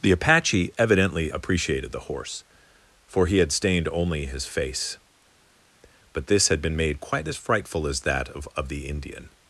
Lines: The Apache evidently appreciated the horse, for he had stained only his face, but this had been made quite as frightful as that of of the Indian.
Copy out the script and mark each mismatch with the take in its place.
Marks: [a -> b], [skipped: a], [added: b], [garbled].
The Apache evidently appreciated the horse, for he had stained only his face, but this had been made quite as frightful as that of of the Indian.